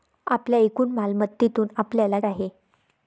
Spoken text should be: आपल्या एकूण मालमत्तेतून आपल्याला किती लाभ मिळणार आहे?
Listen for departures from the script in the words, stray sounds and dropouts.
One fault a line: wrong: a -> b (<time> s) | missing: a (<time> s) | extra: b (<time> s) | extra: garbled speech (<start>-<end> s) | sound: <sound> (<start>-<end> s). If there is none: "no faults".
missing: किती लाभ मिळणार (2.2 s)